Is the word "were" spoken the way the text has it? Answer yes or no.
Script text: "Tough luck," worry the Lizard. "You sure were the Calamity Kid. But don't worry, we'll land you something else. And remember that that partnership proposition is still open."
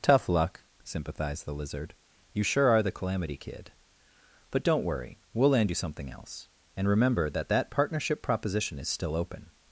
no